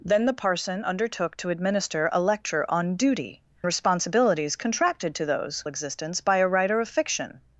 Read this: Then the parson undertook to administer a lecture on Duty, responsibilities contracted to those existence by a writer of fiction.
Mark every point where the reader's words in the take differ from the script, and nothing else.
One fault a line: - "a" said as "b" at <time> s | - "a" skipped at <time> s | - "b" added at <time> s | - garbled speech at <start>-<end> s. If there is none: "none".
none